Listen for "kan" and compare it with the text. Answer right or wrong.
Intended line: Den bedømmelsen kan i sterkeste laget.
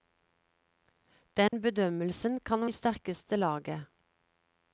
right